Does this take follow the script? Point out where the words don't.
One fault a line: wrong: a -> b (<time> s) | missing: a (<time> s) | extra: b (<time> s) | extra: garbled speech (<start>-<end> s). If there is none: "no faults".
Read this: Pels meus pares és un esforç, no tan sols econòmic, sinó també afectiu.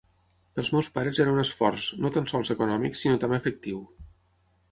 wrong: és -> era (1.2 s)